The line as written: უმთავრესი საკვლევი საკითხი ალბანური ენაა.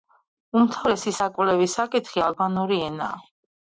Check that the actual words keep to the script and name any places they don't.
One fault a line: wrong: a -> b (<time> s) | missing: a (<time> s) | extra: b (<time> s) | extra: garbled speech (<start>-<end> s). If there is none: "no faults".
no faults